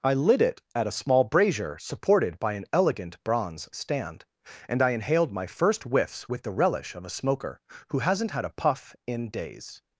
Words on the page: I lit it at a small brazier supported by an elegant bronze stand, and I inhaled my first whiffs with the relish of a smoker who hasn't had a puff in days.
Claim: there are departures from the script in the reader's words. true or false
false